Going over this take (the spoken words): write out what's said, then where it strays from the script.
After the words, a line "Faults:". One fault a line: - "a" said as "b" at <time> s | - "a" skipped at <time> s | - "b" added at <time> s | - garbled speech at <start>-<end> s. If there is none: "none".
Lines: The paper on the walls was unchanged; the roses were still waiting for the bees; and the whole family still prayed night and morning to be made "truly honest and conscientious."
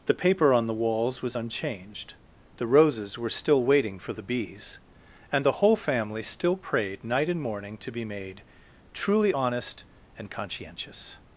The paper on the walls was unchanged; the roses were still waiting for the bees; and the whole family still prayed night and morning to be made "truly honest and conscientious."
Faults:
none